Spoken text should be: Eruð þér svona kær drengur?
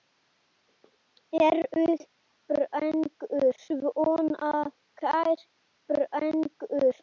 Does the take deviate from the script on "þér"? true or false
true